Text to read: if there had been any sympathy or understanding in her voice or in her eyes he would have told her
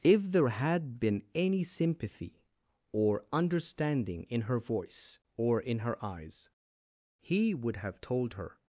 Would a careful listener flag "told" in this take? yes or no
no